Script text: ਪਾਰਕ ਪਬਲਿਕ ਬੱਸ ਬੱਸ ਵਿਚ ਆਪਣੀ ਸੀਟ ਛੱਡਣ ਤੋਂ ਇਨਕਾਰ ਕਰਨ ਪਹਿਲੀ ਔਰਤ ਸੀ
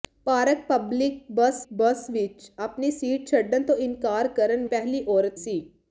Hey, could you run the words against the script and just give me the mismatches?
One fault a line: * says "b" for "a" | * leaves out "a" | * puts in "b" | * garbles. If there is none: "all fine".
all fine